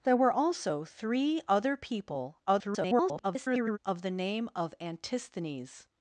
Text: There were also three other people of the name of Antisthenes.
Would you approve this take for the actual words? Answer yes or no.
no